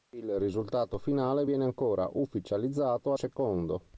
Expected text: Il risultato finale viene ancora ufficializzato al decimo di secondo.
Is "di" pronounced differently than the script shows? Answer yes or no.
yes